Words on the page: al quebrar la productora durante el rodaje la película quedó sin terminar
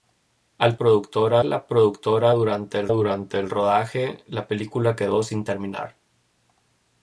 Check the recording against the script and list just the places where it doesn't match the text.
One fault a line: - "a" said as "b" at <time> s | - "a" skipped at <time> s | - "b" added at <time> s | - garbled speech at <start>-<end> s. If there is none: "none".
- "quebrar" said as "productora" at 0.8 s
- "durante el" added at 2.9 s